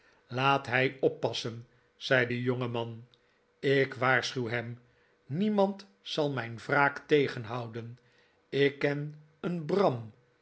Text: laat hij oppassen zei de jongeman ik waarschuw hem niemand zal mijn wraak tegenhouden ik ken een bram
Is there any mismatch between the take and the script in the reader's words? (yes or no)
no